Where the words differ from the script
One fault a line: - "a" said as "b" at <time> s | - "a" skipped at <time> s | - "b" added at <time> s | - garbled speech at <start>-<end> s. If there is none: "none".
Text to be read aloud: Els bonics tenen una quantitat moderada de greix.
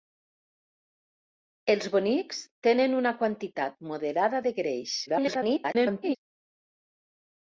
- garbled speech at 5.1-6.2 s